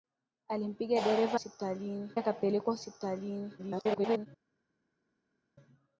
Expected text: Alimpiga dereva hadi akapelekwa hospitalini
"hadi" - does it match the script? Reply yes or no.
no